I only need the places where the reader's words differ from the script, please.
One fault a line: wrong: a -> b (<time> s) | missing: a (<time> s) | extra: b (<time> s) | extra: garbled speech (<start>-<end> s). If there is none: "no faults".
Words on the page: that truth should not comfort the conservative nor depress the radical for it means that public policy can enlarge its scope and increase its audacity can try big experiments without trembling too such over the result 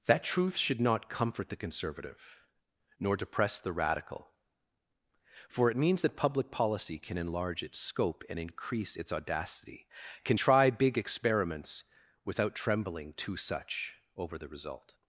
no faults